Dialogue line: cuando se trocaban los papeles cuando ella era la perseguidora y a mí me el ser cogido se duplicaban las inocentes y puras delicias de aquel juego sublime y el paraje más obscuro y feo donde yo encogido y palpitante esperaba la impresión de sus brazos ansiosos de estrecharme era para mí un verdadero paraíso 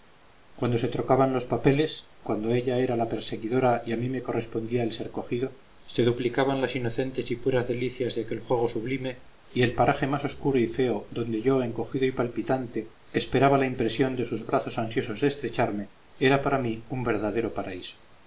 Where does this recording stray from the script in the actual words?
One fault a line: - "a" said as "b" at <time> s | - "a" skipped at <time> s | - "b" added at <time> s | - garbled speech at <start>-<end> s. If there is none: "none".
- "correspondía" added at 4.2 s